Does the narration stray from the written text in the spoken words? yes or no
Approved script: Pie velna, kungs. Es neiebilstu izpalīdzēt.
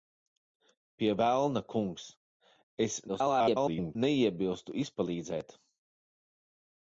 yes